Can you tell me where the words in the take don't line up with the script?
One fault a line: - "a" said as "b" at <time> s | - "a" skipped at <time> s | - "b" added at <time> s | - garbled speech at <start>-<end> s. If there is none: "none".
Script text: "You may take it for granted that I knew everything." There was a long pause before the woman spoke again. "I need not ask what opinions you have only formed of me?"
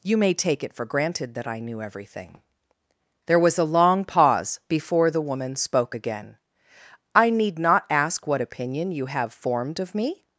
- "opinions" said as "opinion" at 8.4 s
- "only" skipped at 9.3 s